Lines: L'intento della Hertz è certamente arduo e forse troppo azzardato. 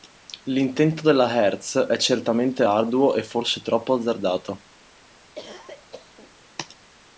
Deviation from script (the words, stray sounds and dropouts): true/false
true